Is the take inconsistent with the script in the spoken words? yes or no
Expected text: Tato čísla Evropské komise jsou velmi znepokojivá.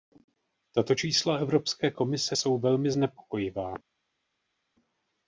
no